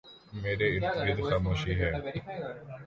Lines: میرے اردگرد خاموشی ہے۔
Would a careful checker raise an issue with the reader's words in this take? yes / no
no